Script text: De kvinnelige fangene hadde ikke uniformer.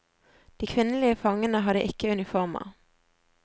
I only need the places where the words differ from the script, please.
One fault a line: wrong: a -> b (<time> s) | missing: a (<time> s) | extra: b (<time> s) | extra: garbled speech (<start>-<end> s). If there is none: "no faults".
no faults